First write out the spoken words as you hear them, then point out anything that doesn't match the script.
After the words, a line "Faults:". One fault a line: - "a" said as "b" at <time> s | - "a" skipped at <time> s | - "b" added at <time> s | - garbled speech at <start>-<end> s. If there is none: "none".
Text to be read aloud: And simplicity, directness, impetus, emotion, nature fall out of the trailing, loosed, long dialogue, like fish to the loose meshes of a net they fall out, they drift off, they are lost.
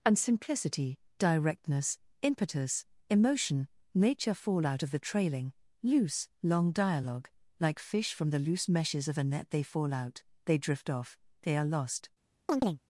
And simplicity, directness, impetus, emotion, nature fall out of the trailing, loose, long dialogue, like fish from the loose meshes of a net they fall out, they drift off, they are lost.
Faults:
- "loosed" said as "loose" at 5.8 s
- "to" said as "from" at 8.1 s